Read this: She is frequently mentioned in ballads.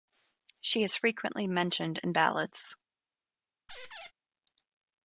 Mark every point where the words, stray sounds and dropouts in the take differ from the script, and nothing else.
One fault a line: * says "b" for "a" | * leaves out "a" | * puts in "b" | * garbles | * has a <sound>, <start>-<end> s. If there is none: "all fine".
* has a squeak, 3.7-4.1 s